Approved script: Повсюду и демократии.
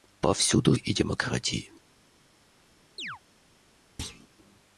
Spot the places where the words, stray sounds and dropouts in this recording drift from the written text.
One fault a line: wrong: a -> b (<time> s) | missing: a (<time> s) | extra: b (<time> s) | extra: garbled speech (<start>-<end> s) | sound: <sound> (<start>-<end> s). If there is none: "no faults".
sound: chirp (3.0-3.2 s)
sound: thud (4.0-4.3 s)